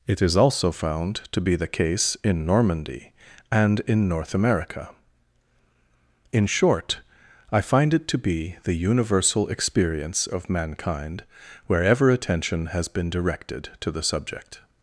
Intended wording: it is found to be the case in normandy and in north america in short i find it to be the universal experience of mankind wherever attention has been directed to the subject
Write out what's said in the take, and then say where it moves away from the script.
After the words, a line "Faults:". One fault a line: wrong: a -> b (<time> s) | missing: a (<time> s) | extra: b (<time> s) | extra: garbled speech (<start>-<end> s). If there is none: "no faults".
it is also found to be the case in normandy and in north america in short i find it to be the universal experience of mankind wherever attention has been directed to the subject
Faults:
extra: also (0.3 s)